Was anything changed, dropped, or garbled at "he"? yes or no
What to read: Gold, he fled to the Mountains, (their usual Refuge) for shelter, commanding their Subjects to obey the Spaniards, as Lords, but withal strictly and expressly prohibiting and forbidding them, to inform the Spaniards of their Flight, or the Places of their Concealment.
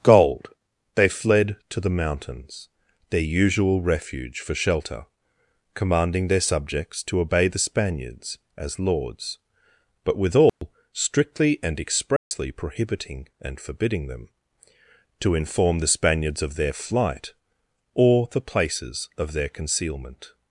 yes